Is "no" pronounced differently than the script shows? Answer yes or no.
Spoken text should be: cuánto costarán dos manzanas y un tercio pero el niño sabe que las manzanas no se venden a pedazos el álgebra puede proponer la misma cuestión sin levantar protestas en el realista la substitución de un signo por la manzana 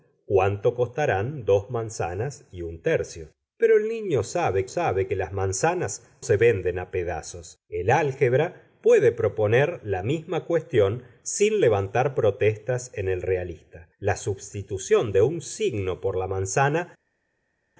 yes